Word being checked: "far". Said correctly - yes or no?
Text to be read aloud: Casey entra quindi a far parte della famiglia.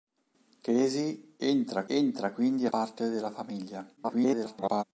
no